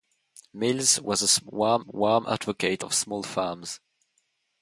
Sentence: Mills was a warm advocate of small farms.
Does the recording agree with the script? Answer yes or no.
no